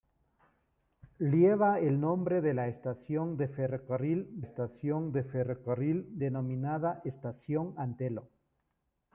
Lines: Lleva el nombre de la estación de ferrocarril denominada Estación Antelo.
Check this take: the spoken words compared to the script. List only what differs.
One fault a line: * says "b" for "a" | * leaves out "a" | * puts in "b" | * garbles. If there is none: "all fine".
* puts in "estación de ferrocarril"